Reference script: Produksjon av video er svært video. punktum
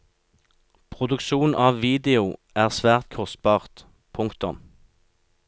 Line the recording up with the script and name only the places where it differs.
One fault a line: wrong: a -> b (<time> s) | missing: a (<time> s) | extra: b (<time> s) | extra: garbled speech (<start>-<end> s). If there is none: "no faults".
wrong: video -> kostbart (3.2 s)